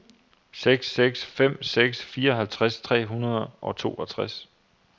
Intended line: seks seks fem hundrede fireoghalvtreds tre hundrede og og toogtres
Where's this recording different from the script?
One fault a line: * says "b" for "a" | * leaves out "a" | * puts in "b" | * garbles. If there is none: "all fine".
* says "seks" for "hundrede"
* leaves out "og"